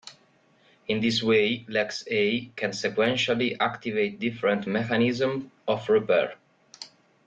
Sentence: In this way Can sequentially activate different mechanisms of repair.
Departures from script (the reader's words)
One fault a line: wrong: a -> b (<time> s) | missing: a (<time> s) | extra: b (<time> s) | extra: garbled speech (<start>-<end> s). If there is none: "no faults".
extra: LexA (1.6 s)